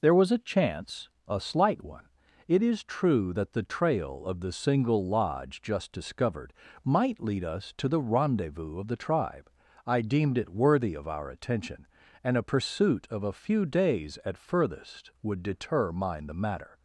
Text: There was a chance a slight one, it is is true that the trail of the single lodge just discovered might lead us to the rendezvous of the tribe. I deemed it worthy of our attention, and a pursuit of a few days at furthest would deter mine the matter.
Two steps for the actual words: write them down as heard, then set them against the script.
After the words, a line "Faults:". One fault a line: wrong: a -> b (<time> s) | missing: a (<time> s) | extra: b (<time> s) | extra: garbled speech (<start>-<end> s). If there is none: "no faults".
There was a chance a slight one, it is true that the trail of the single lodge just discovered might lead us to the rendezvous of the tribe. I deemed it worthy of our attention, and a pursuit of a few days at furthest would deter mine the matter.
Faults:
missing: is (2.8 s)